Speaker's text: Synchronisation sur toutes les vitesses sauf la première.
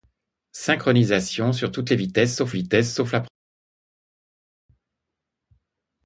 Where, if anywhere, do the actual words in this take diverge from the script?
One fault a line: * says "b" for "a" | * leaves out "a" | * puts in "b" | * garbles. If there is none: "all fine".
* puts in "vitesses sauf"